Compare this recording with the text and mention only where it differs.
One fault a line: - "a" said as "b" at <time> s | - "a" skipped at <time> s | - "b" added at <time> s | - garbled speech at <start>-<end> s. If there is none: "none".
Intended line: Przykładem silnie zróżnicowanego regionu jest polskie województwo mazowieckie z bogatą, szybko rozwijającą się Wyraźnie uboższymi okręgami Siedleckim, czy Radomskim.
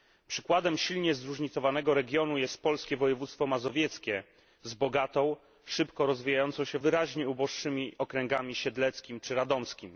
none